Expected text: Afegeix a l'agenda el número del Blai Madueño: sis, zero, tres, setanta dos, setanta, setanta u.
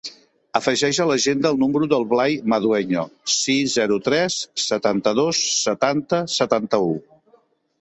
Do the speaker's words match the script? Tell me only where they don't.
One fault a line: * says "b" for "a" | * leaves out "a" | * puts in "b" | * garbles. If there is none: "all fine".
all fine